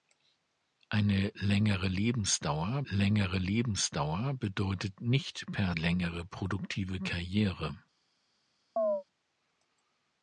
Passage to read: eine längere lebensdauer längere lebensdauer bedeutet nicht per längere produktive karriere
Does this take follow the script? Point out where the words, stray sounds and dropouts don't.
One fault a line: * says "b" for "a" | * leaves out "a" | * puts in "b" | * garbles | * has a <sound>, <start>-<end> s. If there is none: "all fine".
* has a chirp, 8.8-9.0 s